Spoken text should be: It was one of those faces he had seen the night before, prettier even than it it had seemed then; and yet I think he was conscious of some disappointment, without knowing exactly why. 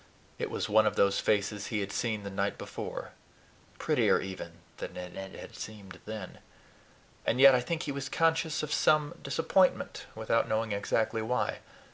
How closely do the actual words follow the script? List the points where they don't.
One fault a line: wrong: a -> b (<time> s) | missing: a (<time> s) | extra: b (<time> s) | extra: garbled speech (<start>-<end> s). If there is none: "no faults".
no faults